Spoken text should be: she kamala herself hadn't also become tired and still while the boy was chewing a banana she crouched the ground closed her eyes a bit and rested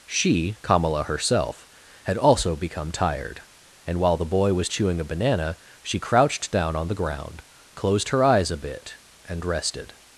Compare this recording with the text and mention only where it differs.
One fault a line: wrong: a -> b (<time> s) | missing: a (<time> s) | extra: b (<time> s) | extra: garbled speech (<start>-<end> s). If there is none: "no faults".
wrong: hadn't -> had (2.0 s)
missing: still (4.0 s)
extra: down on (6.5 s)